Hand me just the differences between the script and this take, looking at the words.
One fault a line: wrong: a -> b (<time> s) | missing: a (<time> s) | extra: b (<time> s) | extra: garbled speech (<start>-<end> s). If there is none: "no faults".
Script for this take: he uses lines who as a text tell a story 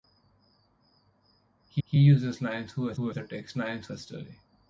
extra: he (1.8 s)
extra: who as (2.9 s)
wrong: tell -> lines (3.5 s)